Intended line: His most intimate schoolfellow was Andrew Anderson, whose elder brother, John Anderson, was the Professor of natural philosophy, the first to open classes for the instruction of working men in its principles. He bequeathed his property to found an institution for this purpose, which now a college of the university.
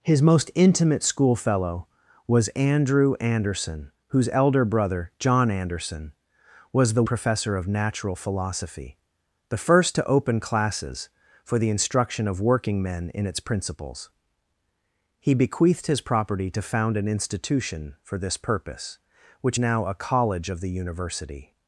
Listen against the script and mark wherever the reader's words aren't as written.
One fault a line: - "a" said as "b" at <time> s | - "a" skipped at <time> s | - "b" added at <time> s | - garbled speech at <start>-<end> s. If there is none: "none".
none